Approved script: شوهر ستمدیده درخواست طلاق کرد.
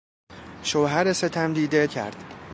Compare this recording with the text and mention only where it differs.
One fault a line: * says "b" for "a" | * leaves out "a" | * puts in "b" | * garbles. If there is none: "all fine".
* leaves out "درخواست طلاق"